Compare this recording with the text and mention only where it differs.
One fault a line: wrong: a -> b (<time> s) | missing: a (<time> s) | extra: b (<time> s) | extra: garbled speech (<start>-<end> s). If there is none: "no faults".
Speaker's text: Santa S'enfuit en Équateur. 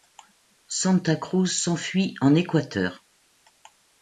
extra: Cruz (1.1 s)